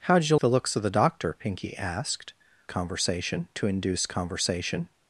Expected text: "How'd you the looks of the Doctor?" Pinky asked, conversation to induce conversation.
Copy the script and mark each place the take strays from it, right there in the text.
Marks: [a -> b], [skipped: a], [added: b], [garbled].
"How'd you the looks of the Doctor?" Pinky asked, conversation to induce conversation.